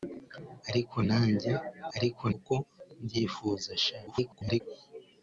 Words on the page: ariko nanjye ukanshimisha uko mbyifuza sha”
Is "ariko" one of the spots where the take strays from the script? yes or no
no